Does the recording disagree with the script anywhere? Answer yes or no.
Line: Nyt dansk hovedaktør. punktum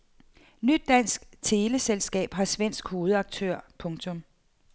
yes